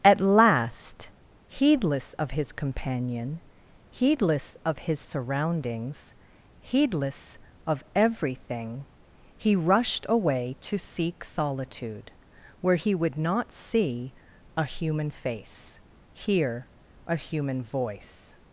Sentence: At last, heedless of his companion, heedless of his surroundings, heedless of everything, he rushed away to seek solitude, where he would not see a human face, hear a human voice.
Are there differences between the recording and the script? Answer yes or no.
no